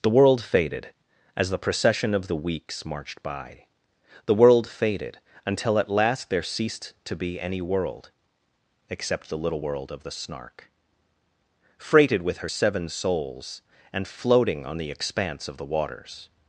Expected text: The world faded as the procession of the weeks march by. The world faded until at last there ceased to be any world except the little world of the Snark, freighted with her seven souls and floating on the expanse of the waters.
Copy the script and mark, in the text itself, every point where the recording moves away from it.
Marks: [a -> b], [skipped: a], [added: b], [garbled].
The world faded as the procession of the weeks [march -> marched] by. The world faded until at last there ceased to be any world except the little world of the Snark, freighted with her seven souls and floating on the expanse of the waters.